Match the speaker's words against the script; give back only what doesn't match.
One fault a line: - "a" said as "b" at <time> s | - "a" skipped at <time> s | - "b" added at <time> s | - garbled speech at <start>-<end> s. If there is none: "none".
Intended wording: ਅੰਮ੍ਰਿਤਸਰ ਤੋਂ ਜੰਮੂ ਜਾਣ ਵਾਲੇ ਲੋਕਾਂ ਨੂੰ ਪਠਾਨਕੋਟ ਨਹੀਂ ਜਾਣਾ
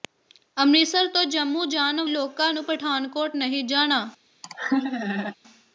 - "ਵਾਲੇ" skipped at 2.0 s